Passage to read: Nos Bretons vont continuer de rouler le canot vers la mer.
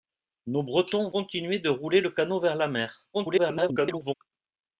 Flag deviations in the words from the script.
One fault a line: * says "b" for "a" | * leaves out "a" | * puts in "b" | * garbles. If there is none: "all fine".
* leaves out "vont"
* garbles